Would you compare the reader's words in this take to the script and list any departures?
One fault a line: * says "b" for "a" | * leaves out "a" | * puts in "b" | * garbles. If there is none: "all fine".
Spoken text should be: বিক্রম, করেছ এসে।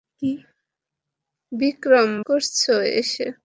all fine